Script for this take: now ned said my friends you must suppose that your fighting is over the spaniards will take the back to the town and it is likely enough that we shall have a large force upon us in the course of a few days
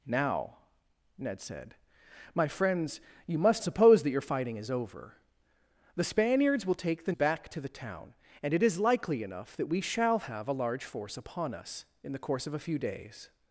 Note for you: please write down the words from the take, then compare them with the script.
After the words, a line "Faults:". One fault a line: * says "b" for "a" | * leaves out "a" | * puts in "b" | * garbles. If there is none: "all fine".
now ned said my friends you must suppose that your fighting is over the spaniards will take the back to the town and it is likely enough that we shall have a large force upon us in the course of a few days
Faults:
all fine